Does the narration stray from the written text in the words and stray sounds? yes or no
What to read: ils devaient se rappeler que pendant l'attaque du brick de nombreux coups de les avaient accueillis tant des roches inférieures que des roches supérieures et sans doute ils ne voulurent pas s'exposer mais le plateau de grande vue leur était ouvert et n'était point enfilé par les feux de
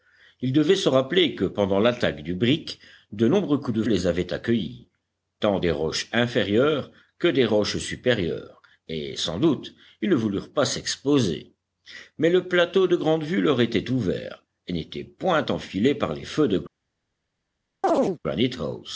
yes